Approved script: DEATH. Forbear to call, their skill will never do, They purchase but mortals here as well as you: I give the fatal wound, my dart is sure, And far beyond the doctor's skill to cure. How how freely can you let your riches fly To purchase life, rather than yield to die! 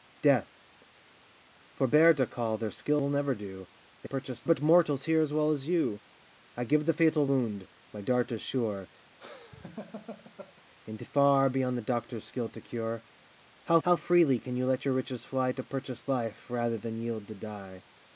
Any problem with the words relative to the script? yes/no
no